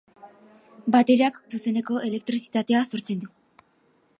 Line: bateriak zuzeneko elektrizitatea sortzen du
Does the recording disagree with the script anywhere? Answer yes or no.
no